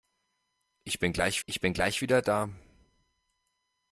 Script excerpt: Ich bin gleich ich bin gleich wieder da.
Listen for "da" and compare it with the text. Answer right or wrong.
right